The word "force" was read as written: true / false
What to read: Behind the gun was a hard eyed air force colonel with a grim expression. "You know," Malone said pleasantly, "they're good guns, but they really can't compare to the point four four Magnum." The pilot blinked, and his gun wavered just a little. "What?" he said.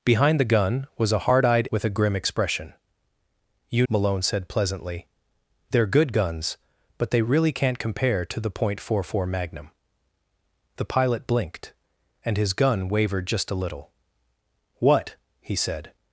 false